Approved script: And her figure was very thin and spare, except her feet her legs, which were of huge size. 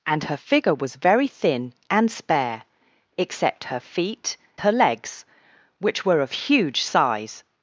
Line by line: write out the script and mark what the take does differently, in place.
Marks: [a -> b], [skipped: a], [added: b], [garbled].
And her figure was very thin and spare, except her feet her legs, which were of huge size.